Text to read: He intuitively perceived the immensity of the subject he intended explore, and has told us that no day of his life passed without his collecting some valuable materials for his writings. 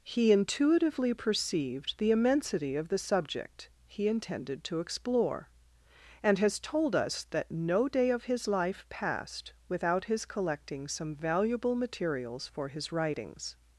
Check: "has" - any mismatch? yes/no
no